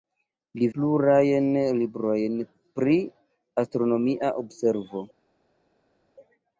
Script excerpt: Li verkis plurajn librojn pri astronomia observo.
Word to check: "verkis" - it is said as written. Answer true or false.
false